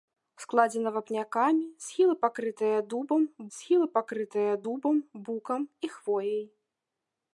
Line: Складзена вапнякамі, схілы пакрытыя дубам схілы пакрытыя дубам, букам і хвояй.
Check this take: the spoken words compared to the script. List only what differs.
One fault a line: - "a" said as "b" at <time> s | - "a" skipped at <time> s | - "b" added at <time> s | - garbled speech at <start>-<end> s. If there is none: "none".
none